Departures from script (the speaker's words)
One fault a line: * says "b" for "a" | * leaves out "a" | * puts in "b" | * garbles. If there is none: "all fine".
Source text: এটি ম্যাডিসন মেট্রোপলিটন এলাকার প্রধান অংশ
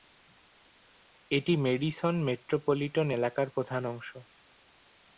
all fine